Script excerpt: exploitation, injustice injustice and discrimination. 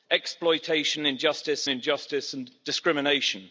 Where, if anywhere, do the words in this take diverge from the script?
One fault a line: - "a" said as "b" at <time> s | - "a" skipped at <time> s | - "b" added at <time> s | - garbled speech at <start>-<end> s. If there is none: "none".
none